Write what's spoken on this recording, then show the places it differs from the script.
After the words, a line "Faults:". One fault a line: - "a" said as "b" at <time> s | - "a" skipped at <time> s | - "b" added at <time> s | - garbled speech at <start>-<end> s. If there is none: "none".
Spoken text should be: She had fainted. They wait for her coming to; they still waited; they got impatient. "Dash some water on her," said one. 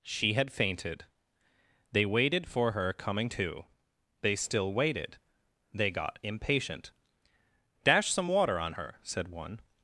She had fainted. They waited for her coming to; they still waited; they got impatient. "Dash some water on her," said one.
Faults:
- "wait" said as "waited" at 2.0 s